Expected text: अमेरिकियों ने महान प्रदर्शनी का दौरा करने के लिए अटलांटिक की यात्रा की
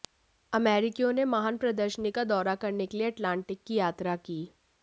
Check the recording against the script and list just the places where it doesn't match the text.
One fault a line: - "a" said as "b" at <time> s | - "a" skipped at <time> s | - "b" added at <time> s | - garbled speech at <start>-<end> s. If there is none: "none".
none